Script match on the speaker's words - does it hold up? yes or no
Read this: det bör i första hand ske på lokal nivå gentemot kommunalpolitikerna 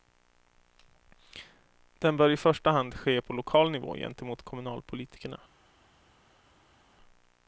no